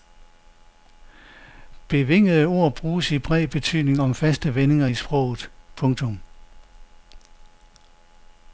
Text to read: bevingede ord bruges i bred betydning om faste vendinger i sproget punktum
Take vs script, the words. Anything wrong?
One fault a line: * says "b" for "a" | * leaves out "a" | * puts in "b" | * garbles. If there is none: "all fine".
all fine